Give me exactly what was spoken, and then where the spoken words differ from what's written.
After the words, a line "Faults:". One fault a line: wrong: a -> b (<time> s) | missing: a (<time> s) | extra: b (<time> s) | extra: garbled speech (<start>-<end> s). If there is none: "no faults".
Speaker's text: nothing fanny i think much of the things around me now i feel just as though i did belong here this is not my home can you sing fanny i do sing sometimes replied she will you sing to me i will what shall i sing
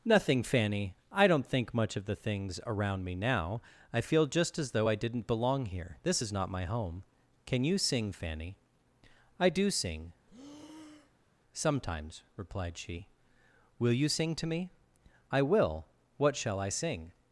nothing fanny i don't think much of the things around me now i feel just as though i didn't belong here this is not my home can you sing fanny i do sing sometimes replied she will you sing to me i will what shall i sing
Faults:
extra: don't (1.3 s)
wrong: did -> didn't (4.9 s)